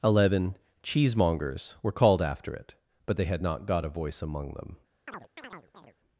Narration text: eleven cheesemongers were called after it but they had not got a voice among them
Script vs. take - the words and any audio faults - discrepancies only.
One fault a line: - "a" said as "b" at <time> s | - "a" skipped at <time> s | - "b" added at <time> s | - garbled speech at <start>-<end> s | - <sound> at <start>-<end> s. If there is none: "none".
- chirp at 5.1-6.0 s